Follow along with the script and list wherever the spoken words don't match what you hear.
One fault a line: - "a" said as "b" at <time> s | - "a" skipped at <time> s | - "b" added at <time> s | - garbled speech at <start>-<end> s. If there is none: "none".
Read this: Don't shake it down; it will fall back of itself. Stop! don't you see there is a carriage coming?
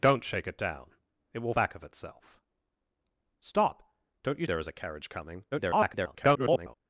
- "fall" skipped at 1.5 s
- "see" skipped at 4.5 s
- garbled speech at 5.5-6.8 s